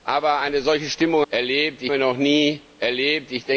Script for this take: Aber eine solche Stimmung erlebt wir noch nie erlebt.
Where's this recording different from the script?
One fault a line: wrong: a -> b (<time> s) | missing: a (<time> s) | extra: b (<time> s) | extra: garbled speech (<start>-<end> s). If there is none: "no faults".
no faults